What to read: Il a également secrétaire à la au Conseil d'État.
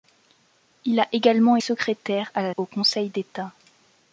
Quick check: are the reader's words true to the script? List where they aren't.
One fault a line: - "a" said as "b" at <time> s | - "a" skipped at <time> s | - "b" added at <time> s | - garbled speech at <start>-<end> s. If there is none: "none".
none